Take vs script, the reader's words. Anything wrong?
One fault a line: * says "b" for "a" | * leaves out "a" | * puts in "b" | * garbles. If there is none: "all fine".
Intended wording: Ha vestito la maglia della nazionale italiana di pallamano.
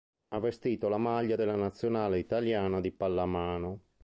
all fine